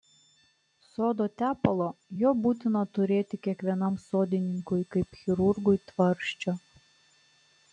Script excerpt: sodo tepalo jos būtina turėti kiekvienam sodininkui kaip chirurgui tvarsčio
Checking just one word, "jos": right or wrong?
wrong